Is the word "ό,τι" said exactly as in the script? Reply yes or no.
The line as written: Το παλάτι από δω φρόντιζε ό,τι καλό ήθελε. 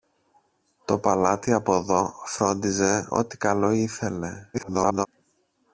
yes